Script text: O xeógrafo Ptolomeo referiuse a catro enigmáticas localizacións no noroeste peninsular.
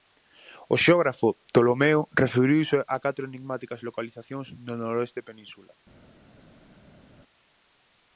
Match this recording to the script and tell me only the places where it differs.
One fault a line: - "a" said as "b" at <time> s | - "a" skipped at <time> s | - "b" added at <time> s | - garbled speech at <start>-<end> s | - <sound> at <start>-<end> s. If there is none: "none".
none